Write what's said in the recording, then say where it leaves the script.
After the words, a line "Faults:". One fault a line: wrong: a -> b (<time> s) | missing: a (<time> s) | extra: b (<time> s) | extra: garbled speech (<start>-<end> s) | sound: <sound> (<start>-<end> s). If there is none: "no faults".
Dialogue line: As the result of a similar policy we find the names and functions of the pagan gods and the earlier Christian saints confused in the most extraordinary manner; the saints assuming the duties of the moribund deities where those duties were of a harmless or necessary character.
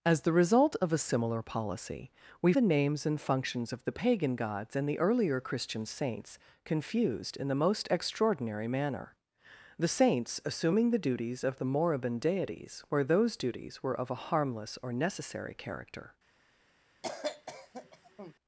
As the result of a similar policy we the names and functions of the pagan gods and the earlier Christian saints confused in the most extraordinary manner; the saints assuming the duties of the moribund deities where those duties were of a harmless or necessary character.
Faults:
missing: find (2.5 s)
sound: cough (17.0-18.3 s)